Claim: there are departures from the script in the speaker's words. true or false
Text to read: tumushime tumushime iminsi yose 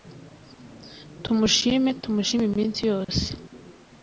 false